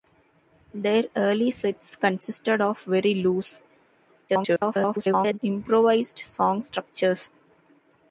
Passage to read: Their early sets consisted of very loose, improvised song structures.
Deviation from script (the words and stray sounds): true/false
true